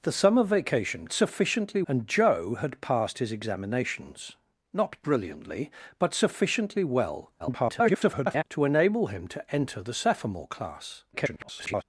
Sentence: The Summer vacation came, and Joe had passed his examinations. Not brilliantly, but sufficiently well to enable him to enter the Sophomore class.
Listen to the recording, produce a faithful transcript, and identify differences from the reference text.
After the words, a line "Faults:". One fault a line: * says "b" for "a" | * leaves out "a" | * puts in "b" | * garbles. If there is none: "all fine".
The Summer vacation sufficiently, and Joe had passed his examinations. Not brilliantly, but sufficiently well [garbled] to enable him to enter the Sophomore class. [garbled]
Faults:
* says "sufficiently" for "came"
* garbles
* garbles